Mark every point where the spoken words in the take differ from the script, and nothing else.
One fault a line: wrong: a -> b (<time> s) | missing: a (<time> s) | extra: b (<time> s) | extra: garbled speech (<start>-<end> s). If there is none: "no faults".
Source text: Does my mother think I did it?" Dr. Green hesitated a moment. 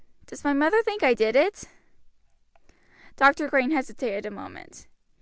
no faults